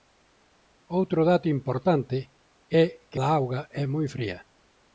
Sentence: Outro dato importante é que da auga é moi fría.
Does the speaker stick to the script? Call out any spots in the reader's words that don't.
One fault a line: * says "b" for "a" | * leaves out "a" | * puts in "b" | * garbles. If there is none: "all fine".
all fine